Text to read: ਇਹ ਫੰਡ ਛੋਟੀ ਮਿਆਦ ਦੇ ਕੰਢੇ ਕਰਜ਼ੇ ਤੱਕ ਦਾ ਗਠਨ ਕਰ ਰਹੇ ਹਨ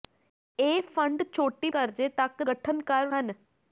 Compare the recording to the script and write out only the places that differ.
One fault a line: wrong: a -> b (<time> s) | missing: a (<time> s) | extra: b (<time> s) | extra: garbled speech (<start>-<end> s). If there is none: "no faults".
missing: ਮਿਆਦ ਦੇ ਕੰਢੇ (1.7 s)
missing: ਦਾ (2.4 s)
missing: ਰਹੇ (3.1 s)